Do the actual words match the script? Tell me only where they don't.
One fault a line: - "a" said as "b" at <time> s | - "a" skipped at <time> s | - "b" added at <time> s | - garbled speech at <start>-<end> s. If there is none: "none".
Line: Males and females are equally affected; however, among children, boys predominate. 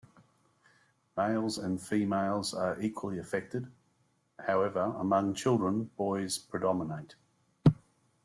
none